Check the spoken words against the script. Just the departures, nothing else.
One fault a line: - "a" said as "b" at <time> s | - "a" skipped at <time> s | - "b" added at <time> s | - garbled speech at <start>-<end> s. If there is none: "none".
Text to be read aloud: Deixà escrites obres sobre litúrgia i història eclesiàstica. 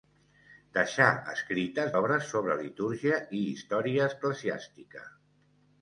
none